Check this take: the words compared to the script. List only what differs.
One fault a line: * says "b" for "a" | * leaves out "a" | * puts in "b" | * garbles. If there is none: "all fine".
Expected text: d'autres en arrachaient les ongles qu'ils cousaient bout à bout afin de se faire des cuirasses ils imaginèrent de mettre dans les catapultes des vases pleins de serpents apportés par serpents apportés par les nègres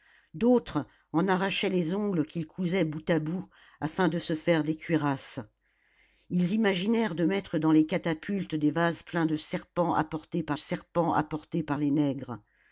all fine